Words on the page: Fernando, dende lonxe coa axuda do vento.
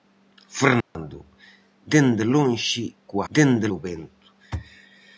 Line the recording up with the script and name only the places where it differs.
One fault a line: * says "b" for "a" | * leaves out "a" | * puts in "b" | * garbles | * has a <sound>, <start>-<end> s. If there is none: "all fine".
* has a dropout, 0.8-1.0 s
* says "dende" for "axuda"